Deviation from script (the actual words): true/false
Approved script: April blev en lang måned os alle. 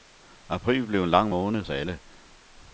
false